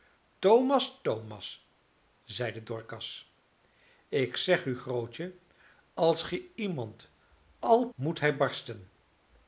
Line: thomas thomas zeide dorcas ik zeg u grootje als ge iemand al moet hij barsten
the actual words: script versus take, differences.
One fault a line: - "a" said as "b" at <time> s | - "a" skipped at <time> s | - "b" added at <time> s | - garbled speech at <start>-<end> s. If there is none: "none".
none